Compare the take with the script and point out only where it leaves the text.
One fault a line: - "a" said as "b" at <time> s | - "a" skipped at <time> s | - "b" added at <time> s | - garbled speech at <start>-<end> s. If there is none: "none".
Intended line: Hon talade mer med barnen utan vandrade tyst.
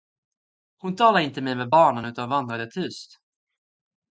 - "inte" added at 1.2 s